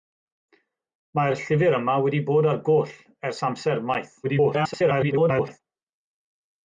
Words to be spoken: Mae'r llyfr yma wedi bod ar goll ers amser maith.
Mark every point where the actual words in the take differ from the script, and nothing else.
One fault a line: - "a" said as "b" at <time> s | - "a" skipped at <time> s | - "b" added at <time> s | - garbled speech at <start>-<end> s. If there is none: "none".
- garbled speech at 4.2-5.6 s